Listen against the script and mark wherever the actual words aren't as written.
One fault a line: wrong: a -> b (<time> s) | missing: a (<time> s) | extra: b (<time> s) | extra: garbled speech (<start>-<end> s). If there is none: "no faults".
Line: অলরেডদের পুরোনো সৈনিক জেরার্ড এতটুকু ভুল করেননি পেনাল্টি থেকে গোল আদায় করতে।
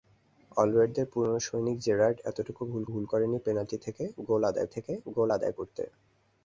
extra: ভুল (2.9 s)
extra: থেকে গোল আদায় (4.7 s)